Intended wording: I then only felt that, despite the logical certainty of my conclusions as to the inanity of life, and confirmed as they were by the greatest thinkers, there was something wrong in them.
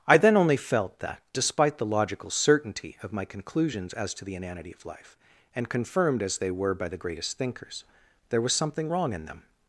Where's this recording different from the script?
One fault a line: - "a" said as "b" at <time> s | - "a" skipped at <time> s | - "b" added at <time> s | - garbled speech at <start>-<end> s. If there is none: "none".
none